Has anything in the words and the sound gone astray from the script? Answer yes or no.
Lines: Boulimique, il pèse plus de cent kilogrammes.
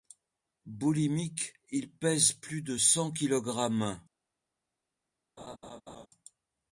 yes